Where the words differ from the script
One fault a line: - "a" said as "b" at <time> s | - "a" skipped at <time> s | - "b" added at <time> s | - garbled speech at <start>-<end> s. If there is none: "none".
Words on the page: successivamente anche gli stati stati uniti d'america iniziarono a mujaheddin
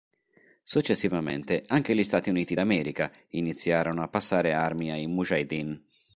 - "stati" skipped at 2.3 s
- "passare armi ai" added at 4.1 s